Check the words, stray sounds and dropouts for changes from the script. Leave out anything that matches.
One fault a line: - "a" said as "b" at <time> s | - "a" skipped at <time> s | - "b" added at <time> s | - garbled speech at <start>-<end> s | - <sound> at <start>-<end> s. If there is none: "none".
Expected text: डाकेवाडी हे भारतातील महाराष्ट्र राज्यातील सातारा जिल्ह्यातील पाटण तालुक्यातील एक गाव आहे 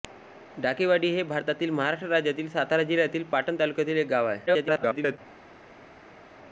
- garbled speech at 4.5-5.2 s